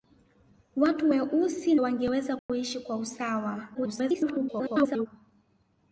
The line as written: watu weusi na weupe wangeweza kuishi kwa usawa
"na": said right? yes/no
no